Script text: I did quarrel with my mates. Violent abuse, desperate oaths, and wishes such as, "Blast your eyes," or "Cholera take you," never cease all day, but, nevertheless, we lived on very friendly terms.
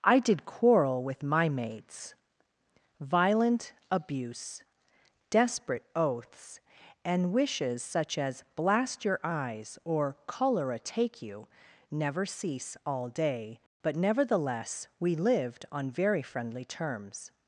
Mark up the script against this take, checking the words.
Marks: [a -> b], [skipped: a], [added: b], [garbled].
I did quarrel with my mates. Violent abuse, desperate oaths, and wishes such as, "Blast your eyes," or "Cholera take you," never cease all day, but, nevertheless, we lived on very friendly terms.